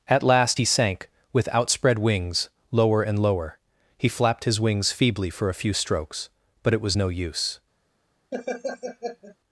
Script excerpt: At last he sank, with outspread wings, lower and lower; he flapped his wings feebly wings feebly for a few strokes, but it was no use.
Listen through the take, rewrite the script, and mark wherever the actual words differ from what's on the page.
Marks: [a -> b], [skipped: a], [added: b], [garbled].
At last he sank, with outspread wings, lower and lower; he flapped his wings feebly [skipped: wings feebly] for a few strokes, but it was no use.